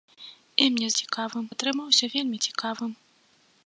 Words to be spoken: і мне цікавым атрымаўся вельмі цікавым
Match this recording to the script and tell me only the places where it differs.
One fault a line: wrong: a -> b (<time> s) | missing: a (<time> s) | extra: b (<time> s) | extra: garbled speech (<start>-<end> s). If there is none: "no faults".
no faults